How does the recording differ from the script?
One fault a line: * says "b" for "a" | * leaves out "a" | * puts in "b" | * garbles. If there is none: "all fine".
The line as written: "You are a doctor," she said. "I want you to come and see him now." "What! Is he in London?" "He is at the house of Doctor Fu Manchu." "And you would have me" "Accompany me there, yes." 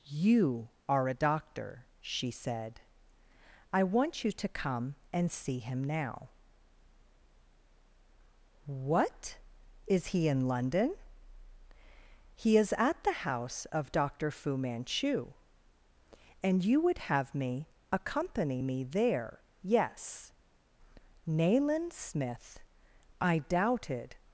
* puts in "Nayland Smith I doubted"